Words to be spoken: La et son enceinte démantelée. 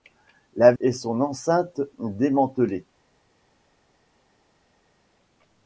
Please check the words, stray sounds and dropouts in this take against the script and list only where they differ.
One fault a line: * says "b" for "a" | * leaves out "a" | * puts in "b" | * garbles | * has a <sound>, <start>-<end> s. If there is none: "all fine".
all fine